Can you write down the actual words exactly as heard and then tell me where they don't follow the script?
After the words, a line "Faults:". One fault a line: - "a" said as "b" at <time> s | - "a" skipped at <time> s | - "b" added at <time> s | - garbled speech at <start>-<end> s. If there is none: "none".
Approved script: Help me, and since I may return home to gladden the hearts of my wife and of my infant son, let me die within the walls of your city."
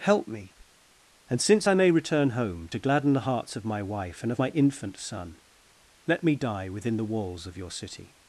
Help me, and since I may return home to gladden the hearts of my wife and of my infant son, let me die within the walls of your city."
Faults:
none